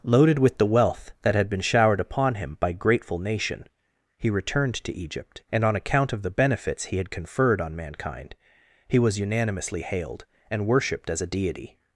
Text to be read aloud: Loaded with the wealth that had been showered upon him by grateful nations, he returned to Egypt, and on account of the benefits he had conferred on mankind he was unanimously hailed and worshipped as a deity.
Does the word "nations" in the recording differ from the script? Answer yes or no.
yes